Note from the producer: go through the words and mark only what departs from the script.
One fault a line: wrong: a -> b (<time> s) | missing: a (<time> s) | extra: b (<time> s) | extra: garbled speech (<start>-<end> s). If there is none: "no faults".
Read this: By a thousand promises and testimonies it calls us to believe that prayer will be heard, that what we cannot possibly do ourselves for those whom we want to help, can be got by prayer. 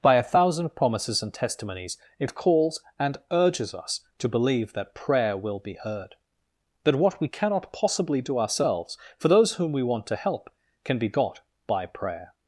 extra: and urges (3.0 s)